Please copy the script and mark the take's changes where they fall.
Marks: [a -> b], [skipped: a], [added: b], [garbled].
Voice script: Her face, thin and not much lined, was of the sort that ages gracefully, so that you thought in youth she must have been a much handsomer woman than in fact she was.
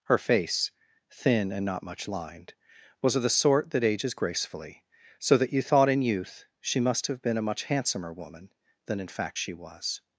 Her face, thin and not much lined, was of the sort that ages gracefully, so that you thought in youth she must have been a much handsomer woman than in fact she was.